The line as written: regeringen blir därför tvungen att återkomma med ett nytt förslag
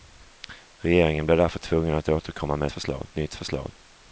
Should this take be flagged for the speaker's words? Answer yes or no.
yes